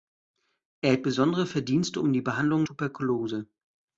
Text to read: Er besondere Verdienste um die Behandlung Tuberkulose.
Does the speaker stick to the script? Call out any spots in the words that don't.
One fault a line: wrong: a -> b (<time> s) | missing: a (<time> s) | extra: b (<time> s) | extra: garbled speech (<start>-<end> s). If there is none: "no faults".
no faults